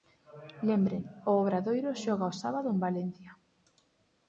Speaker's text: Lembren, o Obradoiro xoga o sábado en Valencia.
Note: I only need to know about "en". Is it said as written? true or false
true